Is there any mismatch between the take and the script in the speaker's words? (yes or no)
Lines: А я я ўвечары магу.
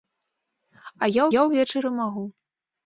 no